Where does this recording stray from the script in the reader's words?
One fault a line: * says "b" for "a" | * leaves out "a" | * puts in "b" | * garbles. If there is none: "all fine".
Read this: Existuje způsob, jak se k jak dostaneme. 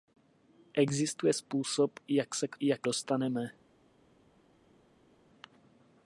all fine